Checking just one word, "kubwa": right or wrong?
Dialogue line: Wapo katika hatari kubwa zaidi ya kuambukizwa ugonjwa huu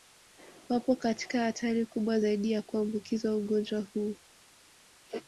right